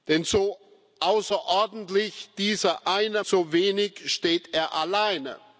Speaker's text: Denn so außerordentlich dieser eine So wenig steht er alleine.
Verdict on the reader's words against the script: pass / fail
pass